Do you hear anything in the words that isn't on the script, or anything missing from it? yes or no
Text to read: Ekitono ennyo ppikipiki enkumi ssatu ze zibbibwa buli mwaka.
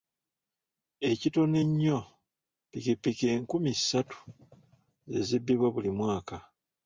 no